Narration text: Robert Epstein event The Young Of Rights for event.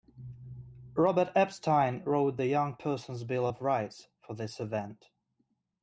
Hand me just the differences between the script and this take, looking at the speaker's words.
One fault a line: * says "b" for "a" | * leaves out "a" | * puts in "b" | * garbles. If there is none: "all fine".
* says "wrote" for "event"
* puts in "Person's Bill"
* puts in "this"